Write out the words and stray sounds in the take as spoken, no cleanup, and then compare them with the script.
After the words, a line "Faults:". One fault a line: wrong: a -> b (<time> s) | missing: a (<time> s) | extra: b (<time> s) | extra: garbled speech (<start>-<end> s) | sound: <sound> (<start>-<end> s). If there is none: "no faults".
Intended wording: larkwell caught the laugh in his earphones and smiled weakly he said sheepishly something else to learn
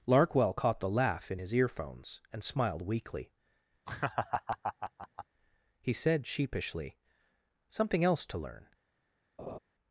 larkwell caught the laugh in his earphones and smiled weakly he said sheepishly something else to learn
Faults:
sound: laugh (3.9-5.3 s)
sound: laugh (9.4-9.6 s)